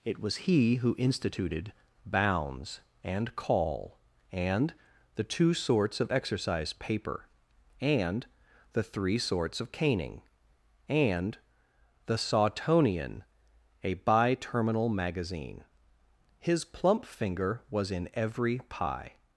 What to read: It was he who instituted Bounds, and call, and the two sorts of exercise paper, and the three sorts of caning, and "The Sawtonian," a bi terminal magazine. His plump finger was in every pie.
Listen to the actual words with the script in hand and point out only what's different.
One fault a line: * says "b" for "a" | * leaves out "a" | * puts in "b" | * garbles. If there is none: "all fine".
all fine